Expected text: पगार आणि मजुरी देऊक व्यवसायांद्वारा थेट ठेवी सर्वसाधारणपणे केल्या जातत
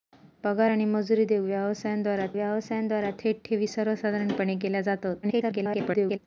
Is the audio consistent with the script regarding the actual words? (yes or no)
no